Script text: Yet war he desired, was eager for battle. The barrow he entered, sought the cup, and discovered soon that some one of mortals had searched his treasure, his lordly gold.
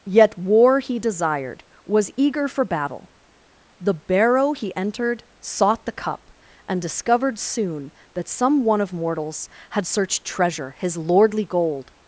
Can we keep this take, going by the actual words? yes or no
no